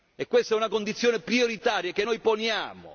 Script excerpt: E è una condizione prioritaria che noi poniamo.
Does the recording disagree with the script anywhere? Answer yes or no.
yes